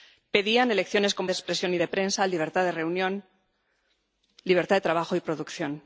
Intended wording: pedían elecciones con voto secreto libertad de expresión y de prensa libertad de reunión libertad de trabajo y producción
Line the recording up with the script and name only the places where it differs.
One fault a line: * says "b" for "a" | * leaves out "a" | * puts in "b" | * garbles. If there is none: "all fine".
* leaves out "voto secreto libertad"